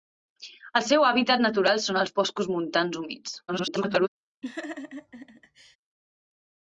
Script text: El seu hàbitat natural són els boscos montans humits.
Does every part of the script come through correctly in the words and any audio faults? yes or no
no